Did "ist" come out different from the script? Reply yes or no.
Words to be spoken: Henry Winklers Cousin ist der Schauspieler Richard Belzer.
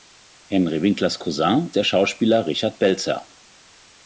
yes